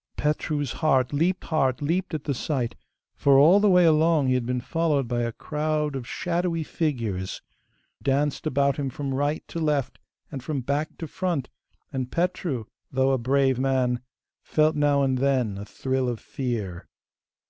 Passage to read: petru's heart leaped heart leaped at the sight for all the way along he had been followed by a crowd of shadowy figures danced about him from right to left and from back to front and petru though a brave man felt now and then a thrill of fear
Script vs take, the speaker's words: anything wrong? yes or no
no